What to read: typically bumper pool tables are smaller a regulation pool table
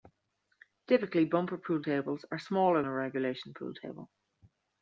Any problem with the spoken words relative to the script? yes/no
no